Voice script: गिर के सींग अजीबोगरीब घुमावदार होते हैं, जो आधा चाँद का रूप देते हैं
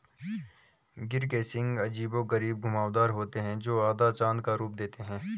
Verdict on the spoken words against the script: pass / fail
pass